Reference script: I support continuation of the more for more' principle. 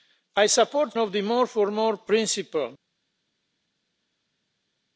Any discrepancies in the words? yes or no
yes